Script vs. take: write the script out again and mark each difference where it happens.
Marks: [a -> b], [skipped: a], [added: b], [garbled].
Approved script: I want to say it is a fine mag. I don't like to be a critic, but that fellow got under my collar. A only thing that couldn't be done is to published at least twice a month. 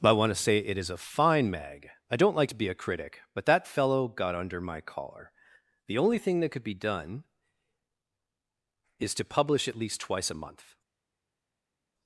I want to say it is a fine mag. I don't like to be a critic, but that fellow got under my collar. [A -> The] only thing that [couldn't -> could] be done is to [published -> publish] at least twice a month.